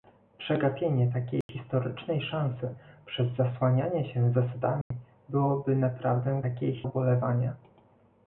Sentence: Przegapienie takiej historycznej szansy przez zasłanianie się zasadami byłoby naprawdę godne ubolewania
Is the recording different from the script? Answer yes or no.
yes